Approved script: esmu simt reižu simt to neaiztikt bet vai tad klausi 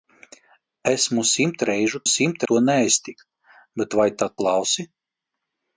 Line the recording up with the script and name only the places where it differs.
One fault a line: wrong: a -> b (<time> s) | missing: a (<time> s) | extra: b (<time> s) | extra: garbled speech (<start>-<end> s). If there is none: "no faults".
no faults